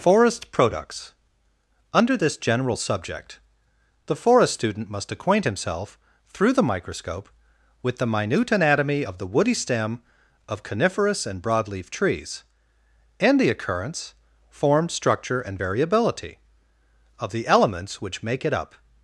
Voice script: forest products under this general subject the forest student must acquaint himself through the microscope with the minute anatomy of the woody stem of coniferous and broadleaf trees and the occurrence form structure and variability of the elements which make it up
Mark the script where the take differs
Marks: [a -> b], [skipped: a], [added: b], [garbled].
forest products under this general subject the forest student must acquaint himself through the microscope with the minute anatomy of the woody stem of coniferous and broadleaf trees and the occurrence form structure and variability of the elements which make it up